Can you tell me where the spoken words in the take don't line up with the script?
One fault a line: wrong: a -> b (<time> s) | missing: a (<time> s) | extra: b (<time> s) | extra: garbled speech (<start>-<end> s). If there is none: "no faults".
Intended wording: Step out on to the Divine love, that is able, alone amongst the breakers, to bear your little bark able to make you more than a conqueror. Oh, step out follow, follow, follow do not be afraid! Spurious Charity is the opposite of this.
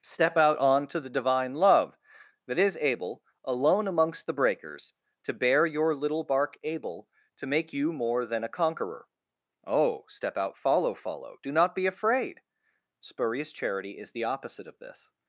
missing: follow (11.4 s)